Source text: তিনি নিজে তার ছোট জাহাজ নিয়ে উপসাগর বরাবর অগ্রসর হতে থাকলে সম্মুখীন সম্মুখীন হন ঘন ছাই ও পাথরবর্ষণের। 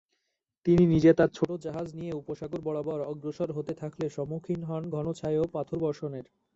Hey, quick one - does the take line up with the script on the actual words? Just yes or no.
no